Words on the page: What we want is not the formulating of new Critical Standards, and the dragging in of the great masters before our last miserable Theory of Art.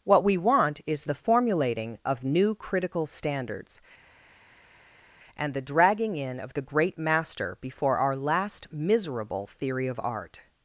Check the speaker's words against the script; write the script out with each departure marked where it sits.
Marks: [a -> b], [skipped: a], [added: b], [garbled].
What we want is [skipped: not] the formulating of new Critical Standards, and the dragging in of the great [masters -> master] before our last miserable Theory of Art.